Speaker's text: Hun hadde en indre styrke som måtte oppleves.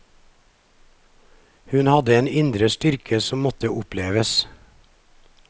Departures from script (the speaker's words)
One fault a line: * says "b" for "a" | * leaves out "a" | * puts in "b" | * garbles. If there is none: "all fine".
all fine